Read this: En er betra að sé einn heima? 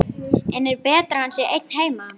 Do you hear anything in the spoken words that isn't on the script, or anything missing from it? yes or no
yes